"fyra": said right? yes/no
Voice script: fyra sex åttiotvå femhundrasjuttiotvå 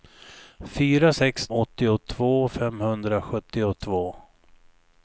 yes